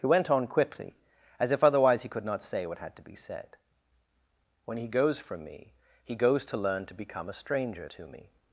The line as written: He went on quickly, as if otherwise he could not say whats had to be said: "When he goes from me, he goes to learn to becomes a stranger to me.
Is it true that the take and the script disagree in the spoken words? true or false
true